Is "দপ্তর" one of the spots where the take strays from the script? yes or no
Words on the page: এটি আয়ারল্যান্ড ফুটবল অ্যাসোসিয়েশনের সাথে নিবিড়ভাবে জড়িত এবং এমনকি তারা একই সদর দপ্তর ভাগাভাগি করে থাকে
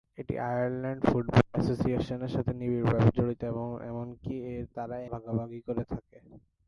yes